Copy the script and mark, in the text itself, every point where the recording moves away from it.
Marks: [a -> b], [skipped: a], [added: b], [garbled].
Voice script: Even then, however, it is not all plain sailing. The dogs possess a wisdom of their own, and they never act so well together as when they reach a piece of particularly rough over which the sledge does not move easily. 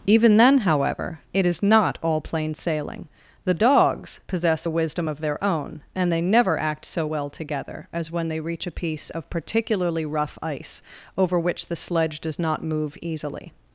Even then, however, it is not all plain sailing. The dogs possess a wisdom of their own, and they never act so well together as when they reach a piece of particularly rough [added: ice] over which the sledge does not move easily.